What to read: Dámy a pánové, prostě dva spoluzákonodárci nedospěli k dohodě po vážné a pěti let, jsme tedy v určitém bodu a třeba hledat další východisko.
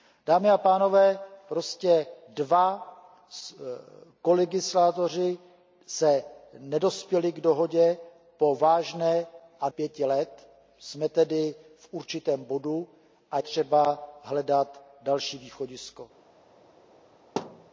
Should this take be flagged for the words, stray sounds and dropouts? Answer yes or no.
yes